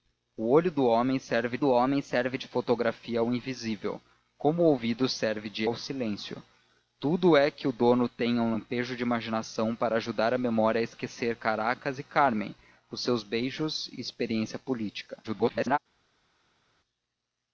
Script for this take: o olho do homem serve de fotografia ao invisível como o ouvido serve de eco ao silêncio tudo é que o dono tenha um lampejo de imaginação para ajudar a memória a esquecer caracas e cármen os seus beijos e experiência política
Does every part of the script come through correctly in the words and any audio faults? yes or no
no